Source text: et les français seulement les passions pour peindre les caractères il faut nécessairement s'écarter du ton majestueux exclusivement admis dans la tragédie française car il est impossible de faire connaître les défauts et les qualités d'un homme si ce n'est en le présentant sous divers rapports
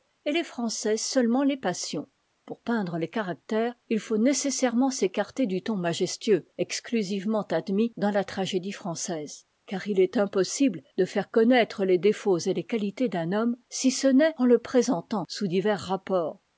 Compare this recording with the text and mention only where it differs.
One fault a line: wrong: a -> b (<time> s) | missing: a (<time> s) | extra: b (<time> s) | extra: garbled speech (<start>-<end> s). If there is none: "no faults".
no faults